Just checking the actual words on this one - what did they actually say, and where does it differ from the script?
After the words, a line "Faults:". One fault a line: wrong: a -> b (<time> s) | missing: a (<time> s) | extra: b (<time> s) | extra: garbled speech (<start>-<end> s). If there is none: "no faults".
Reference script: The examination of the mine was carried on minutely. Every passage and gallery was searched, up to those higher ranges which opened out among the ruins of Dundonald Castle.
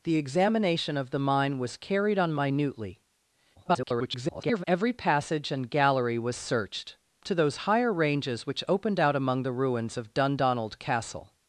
The examination of the mine was carried on minutely. [garbled] Every passage and gallery was searched, to those higher ranges which opened out among the ruins of Dundonald Castle.
Faults:
extra: garbled speech (3.6-4.6 s)
missing: up (7.0 s)